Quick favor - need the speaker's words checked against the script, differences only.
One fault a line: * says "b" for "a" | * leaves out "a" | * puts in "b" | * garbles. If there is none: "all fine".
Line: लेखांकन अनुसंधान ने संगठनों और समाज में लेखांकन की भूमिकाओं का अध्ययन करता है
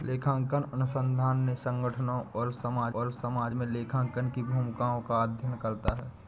* puts in "और समाज"